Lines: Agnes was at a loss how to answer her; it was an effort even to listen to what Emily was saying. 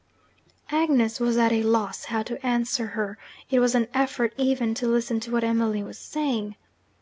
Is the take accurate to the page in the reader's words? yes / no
yes